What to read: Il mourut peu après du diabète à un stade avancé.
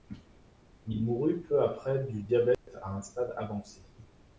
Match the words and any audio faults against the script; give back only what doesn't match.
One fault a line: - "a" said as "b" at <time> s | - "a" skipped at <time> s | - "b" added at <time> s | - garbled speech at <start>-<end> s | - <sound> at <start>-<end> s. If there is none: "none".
- dropout at 2.5-2.7 s